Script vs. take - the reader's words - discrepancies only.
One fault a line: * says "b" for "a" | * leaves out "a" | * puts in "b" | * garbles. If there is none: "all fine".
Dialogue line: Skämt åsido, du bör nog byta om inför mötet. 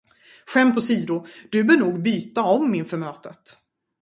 all fine